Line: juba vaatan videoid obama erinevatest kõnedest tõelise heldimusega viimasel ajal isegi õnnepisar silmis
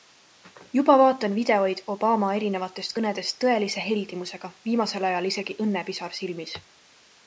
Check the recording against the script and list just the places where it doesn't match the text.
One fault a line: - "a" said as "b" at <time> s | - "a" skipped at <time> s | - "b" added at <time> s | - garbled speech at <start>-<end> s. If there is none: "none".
none